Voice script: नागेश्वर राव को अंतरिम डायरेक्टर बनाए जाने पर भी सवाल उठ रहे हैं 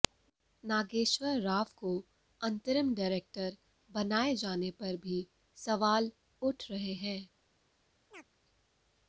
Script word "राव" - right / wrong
right